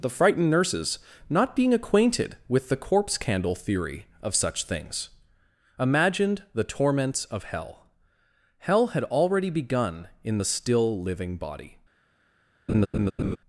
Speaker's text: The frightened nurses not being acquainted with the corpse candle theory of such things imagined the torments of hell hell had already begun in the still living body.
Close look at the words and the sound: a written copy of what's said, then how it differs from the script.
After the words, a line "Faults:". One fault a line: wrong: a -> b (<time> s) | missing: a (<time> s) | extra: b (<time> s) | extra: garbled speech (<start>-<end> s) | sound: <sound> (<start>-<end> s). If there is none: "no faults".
The frightened nurses not being acquainted with the corpse candle theory of such things imagined the torments of hell hell had already begun in the still living body.
Faults:
sound: laugh (12.7-13.4 s)